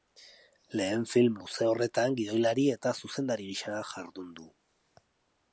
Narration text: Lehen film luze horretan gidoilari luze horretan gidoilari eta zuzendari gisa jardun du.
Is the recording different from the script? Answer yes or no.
yes